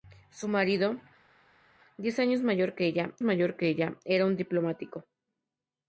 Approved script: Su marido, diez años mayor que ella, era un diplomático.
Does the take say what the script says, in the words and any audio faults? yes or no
no